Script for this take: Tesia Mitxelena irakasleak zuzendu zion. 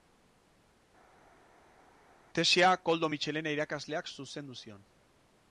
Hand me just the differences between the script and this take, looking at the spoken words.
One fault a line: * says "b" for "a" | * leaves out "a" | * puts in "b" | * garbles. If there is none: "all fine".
* puts in "Koldo"